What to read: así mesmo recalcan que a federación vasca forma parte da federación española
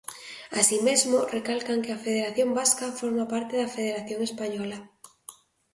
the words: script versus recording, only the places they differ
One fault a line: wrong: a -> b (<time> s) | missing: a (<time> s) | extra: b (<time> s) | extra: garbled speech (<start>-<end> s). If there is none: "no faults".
no faults